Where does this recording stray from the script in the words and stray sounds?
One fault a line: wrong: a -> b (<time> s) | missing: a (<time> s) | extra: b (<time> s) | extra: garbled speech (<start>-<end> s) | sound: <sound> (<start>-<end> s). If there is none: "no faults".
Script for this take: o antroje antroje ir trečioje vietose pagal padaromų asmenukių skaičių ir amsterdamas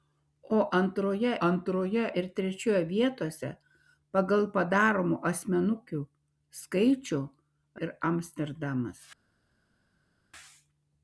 no faults